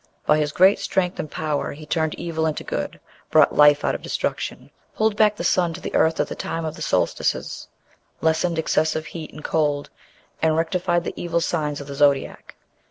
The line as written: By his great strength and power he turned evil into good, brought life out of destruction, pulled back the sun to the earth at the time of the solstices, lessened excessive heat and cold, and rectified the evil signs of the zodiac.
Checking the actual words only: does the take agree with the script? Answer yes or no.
yes